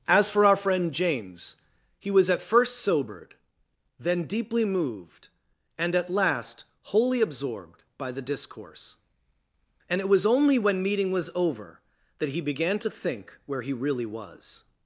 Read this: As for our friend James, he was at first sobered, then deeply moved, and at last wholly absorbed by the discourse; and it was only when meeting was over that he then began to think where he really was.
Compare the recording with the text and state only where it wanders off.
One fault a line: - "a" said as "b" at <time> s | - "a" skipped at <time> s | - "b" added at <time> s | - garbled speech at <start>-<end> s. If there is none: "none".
- "then" skipped at 12.4 s